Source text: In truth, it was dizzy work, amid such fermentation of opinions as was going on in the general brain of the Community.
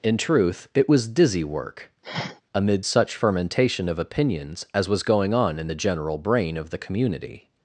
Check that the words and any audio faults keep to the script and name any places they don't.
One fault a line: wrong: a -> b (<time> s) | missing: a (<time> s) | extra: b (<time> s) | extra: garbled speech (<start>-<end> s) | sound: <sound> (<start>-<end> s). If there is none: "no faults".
sound: sniff (2.0-2.4 s)